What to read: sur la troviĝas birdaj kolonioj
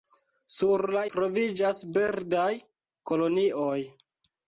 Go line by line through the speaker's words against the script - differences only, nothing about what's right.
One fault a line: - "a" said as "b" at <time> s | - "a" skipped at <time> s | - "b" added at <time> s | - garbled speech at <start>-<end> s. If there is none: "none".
none